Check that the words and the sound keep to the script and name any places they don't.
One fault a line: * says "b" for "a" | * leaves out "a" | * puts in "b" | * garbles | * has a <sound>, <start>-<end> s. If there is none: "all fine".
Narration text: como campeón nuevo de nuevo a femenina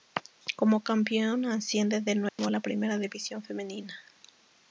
* says "asciende" for "nuevo"
* has a dropout, 2.3-2.4 s
* puts in "la primera división"